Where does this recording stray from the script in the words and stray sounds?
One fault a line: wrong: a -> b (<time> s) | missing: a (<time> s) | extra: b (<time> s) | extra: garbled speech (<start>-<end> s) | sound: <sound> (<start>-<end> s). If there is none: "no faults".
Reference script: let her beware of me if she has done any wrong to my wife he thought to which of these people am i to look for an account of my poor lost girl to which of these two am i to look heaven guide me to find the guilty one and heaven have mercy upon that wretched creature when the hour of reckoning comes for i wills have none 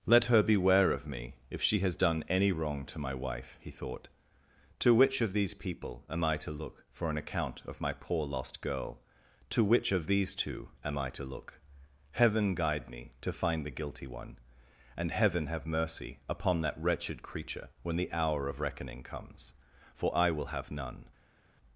wrong: wills -> will (20.3 s)